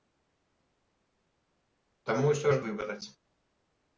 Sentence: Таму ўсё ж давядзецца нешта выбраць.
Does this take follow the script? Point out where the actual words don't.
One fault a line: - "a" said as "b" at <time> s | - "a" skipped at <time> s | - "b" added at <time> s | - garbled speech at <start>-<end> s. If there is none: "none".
- "давядзецца нешта" skipped at 2.6 s